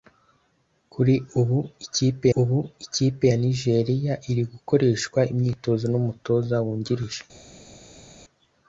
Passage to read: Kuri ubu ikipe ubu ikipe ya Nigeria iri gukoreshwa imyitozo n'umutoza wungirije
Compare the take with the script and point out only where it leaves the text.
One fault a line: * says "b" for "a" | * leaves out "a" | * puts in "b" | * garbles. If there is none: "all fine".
all fine